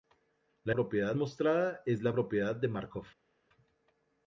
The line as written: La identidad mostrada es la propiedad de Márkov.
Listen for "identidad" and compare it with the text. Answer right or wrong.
wrong